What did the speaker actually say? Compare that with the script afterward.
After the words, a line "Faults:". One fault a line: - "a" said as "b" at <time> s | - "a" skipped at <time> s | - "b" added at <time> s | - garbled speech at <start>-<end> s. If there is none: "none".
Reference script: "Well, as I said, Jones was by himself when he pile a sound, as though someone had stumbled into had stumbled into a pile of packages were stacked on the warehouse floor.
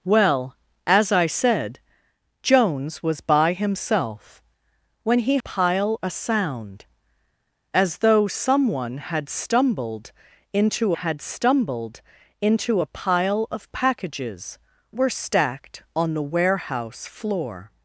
"Well, as I said, Jones was by himself when he pile a sound, as though someone had stumbled into had stumbled into a pile of packages were stacked on the warehouse floor.
Faults:
none